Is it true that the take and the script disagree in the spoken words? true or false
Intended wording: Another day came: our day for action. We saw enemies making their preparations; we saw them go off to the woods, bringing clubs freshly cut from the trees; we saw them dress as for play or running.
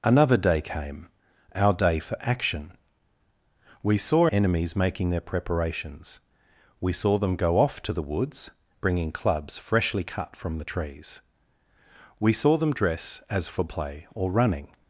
false